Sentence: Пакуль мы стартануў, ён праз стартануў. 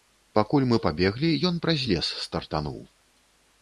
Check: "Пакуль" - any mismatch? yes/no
no